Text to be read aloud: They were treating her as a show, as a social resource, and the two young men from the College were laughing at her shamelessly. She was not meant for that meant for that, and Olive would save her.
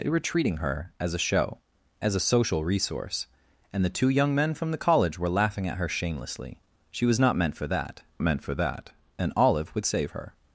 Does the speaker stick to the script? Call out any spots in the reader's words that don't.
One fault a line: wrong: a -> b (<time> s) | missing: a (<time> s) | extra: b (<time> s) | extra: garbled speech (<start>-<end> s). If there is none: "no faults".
no faults